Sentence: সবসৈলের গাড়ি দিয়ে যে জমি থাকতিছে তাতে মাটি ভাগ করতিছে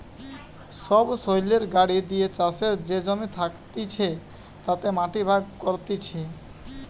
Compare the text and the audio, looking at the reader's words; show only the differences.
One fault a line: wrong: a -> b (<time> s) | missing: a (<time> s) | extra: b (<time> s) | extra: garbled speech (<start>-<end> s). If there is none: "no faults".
extra: চাষের (2.4 s)